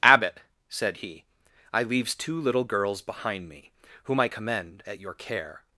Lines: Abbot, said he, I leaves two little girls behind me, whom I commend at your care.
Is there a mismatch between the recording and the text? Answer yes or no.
no